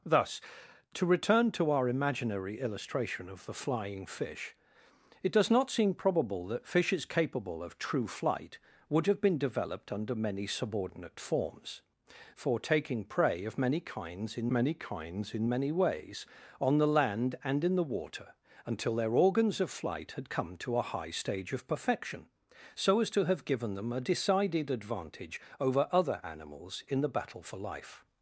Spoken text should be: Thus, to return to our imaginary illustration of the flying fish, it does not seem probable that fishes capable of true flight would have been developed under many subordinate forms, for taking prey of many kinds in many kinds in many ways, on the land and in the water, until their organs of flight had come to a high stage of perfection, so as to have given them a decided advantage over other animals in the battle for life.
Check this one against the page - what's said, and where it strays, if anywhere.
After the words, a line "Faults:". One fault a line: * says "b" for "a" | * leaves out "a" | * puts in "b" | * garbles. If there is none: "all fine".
Thus, to return to our imaginary illustration of the flying fish, it does not seem probable that fishes capable of true flight would have been developed under many subordinate forms, for taking prey of many kinds in many kinds in many ways, on the land and in the water, until their organs of flight had come to a high stage of perfection, so as to have given them a decided advantage over other animals in the battle for life.
Faults:
all fine